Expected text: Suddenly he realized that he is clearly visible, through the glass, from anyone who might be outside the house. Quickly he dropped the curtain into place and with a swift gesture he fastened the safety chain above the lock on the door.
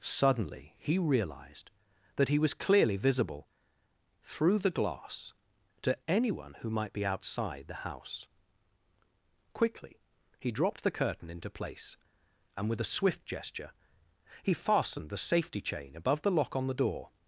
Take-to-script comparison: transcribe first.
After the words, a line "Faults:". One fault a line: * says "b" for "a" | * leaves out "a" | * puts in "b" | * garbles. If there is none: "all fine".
Suddenly he realized that he was clearly visible, through the glass, to anyone who might be outside the house. Quickly he dropped the curtain into place and with a swift gesture he fastened the safety chain above the lock on the door.
Faults:
* says "was" for "is"
* says "to" for "from"